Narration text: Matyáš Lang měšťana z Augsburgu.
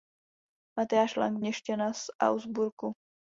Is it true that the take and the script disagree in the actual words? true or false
false